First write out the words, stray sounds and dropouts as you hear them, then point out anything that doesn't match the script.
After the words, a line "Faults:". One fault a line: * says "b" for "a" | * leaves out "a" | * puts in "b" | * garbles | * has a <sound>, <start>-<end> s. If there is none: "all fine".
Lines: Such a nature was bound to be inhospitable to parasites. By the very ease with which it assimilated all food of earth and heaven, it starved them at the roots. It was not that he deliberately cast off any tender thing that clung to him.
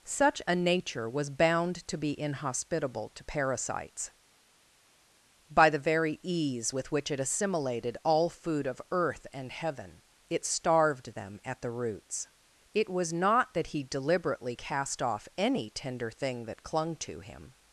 Such a nature was bound to be inhospitable to parasites. By the very ease with which it assimilated all food of earth and heaven, it starved them at the roots. It was not that he deliberately cast off any tender thing that clung to him.
Faults:
all fine